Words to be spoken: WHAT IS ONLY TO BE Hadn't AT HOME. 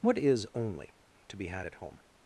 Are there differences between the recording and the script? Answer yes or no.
yes